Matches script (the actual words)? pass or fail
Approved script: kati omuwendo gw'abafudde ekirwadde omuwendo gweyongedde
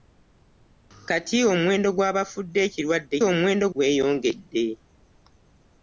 pass